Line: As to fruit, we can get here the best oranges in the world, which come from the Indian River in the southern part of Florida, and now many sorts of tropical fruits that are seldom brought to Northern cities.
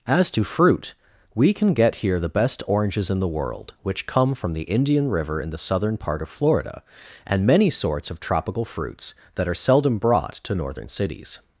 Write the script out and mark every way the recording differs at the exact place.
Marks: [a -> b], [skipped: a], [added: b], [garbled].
As to fruit, we can get here the best oranges in the world, which come from the Indian River in the southern part of Florida, and [skipped: now] many sorts of tropical fruits that are seldom brought to Northern cities.